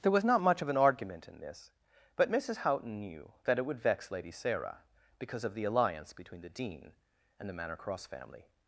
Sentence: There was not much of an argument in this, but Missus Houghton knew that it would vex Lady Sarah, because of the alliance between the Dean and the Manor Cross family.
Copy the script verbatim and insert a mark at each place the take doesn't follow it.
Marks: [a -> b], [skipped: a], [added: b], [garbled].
There was not much of an argument in this, but Missus Houghton knew that it would vex Lady Sarah, because of the alliance between the Dean and the Manor Cross family.